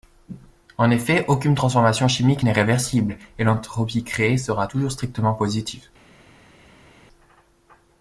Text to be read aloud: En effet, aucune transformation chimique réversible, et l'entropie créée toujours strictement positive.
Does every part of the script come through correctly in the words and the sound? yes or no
no